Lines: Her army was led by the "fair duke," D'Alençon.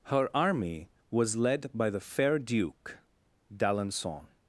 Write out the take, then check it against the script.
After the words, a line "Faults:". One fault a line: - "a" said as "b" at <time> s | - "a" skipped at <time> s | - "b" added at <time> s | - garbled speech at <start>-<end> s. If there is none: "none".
Her army was led by the "fair duke," D'Alençon.
Faults:
none